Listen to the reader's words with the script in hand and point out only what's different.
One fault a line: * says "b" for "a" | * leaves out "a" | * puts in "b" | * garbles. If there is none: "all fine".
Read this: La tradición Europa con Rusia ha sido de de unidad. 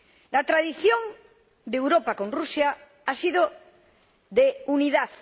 * puts in "de"
* leaves out "de"